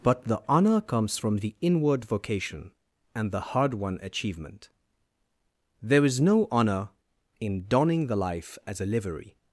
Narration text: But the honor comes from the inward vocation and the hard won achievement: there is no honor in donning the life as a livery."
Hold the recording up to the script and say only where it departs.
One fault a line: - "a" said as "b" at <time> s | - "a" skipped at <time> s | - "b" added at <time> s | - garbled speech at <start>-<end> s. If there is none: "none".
none